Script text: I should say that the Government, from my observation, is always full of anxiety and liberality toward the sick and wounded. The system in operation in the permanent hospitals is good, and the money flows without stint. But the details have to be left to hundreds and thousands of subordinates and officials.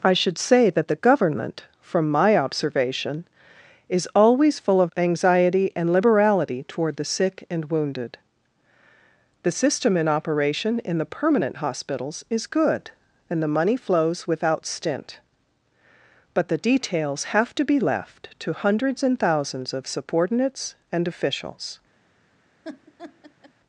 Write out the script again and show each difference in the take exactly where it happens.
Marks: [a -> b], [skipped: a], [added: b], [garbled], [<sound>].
I should say that the Government, from my observation, is always full of anxiety and liberality toward the sick and wounded. The system in operation in the permanent hospitals is good, and the money flows without stint. But the details have to be left to hundreds and thousands of subordinates and officials. [laugh]